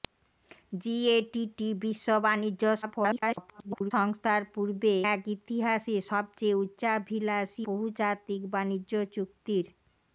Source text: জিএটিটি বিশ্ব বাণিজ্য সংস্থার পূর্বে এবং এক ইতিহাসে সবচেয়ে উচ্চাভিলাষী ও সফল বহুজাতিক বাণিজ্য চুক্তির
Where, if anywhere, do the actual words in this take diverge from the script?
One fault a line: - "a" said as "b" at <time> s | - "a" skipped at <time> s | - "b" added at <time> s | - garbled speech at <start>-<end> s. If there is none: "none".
- garbled speech at 2.8-3.9 s
- "এবং" skipped at 4.9 s
- "ও সফল" skipped at 7.6 s